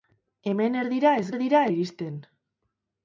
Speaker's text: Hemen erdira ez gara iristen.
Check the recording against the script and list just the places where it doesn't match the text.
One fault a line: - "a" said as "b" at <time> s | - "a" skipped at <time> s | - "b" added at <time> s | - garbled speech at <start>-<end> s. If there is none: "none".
- "gara" said as "erdira" at 1.3 s